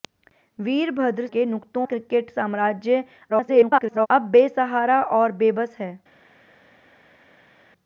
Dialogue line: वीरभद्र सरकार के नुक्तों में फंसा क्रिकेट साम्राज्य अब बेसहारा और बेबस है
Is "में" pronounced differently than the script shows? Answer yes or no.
yes